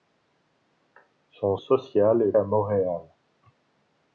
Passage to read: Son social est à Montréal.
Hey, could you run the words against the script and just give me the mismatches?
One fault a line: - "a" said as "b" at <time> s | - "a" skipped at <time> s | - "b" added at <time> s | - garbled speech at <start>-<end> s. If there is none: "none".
none